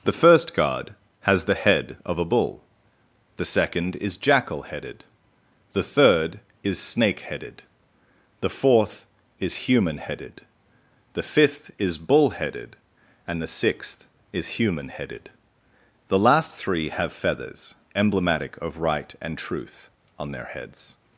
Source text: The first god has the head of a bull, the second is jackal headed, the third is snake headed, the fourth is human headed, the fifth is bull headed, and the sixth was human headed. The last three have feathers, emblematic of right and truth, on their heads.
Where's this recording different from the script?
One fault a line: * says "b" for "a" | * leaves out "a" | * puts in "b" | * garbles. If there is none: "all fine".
* says "is" for "was"